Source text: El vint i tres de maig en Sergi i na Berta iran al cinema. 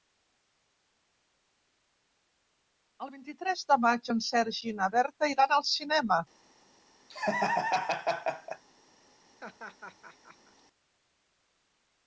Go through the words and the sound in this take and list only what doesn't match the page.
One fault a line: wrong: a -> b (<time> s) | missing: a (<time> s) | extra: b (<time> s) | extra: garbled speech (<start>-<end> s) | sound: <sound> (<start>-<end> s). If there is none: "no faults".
sound: laugh (7.1-8.6 s)
sound: laugh (9.4-10.6 s)